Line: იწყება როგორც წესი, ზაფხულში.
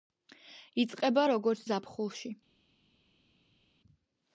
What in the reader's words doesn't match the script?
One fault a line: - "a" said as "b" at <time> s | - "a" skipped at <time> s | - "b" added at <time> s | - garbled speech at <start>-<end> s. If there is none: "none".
- "წესი" skipped at 1.7 s